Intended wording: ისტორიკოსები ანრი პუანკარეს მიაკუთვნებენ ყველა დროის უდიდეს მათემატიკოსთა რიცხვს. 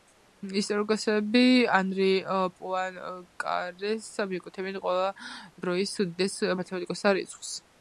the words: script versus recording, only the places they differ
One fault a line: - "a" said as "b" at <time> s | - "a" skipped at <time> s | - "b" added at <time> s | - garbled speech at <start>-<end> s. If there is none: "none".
none